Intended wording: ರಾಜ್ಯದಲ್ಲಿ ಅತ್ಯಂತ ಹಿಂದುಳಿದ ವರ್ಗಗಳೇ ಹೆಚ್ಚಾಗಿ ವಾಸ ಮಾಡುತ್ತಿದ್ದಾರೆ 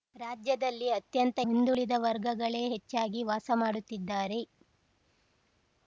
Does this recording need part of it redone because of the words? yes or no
no